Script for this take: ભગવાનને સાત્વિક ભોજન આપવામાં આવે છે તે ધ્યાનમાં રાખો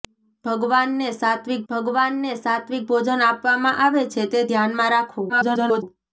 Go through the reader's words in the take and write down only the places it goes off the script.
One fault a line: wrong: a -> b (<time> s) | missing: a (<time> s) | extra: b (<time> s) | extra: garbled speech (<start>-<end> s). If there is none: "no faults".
extra: ભગવાનને સાત્વિક (1.7 s)
extra: garbled speech (5.3-5.8 s)